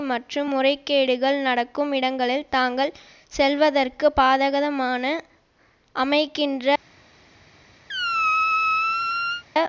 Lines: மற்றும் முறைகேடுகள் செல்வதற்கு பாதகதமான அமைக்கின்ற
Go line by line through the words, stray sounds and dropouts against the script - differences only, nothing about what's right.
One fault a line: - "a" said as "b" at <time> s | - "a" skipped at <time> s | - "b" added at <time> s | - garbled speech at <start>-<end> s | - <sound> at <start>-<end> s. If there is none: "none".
- "நடக்கும் இடங்களில் தாங்கள்" added at 1.4 s
- squeak at 7.9-9.4 s